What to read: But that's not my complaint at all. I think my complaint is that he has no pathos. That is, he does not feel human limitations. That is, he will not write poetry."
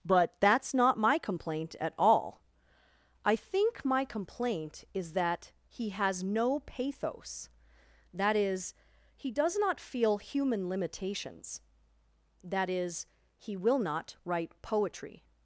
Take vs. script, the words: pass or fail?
pass